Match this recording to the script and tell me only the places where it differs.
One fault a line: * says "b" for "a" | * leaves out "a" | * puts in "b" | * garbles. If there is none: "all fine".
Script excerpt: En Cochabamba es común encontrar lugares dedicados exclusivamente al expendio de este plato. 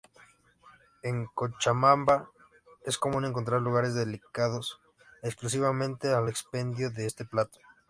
all fine